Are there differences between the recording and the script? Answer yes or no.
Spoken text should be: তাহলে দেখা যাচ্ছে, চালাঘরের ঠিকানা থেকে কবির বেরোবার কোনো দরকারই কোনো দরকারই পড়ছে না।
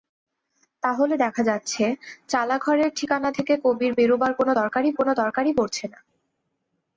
no